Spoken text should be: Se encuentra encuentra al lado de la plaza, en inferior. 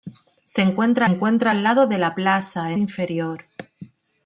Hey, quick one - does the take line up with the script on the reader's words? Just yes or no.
yes